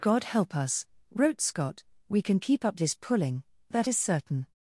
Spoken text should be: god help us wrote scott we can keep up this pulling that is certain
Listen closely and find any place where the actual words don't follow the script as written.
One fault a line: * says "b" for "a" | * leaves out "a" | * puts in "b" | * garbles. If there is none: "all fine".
all fine